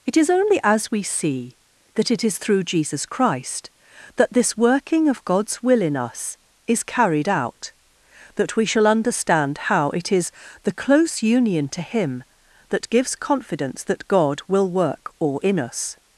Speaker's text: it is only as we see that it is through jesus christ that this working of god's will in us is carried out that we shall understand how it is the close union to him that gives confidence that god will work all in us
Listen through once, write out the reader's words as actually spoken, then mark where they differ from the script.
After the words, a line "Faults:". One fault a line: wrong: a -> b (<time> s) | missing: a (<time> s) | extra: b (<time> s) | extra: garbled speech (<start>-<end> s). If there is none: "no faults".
it is only as we see that it is through jesus christ that this working of god's will in us is carried out that we shall understand how it is the close union to him that gives confidence that god will work all in us
Faults:
no faults